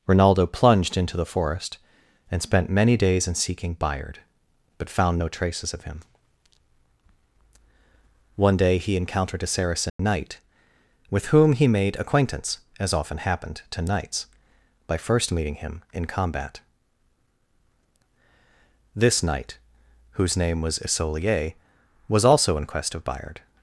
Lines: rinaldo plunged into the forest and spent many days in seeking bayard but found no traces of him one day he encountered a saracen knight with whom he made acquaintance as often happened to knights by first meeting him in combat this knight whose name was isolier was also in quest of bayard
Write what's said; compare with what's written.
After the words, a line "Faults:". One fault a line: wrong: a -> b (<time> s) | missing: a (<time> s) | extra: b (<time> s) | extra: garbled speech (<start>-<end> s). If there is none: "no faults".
rinaldo plunged into the forest and spent many days in seeking bayard but found no traces of him one day he encountered a saracen knight with whom he made acquaintance as often happened to knights by first meeting him in combat this knight whose name was isolier was also in quest of bayard
Faults:
no faults